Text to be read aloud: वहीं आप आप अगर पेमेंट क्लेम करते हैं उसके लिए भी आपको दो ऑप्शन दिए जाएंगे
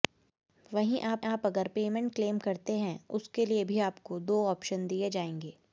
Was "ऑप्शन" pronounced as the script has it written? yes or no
yes